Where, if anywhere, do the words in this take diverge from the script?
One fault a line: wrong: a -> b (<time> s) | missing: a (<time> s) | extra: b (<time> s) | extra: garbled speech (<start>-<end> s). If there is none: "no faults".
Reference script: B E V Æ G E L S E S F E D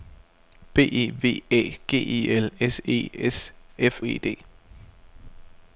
no faults